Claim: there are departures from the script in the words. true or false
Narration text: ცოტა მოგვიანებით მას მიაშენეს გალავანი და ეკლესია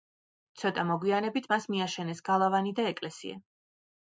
false